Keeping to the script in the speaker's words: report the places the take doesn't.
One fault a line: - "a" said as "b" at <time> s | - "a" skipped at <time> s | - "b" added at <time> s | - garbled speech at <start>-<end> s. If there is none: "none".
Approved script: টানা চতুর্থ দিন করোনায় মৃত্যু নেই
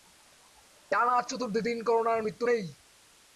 none